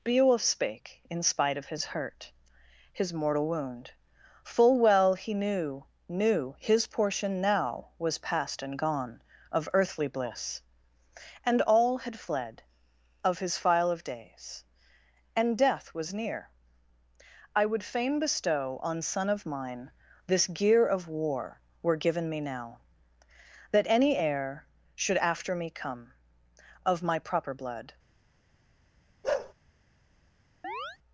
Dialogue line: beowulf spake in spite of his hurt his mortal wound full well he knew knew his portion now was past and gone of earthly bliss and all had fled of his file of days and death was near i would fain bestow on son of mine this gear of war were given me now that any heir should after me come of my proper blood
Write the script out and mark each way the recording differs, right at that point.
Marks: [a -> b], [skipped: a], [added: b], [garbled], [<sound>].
beowulf spake in spite of his hurt his mortal wound full well he knew knew his portion now was past and gone of earthly bliss and all had fled of his file of days and death was near i would fain bestow on son of mine this gear of war were given me now that any heir should after me come of my proper blood [bark] [chirp]